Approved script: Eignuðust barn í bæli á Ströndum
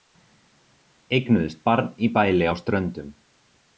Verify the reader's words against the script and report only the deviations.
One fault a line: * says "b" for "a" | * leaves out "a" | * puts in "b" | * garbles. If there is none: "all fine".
all fine